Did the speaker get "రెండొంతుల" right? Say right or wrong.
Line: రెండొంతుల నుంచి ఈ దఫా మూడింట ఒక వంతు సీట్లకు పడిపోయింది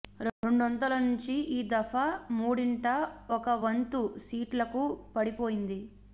right